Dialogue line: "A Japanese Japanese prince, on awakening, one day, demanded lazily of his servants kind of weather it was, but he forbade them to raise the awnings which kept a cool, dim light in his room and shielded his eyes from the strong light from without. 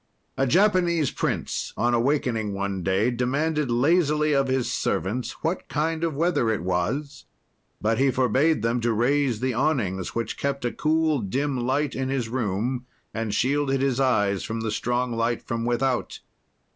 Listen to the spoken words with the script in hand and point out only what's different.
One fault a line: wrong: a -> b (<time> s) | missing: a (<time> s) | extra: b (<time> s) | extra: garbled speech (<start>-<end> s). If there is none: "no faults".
missing: Japanese (1.1 s)
extra: what (5.4 s)